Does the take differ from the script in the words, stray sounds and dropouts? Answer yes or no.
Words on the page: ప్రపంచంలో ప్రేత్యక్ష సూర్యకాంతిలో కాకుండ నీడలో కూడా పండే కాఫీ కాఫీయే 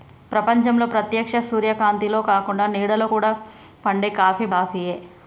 no